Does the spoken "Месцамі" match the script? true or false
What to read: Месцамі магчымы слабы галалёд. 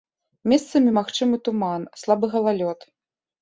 true